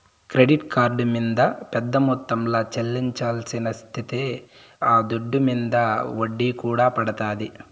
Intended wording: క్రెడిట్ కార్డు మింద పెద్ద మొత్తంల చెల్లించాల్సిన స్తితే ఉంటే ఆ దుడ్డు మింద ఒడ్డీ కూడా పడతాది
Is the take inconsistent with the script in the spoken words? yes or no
yes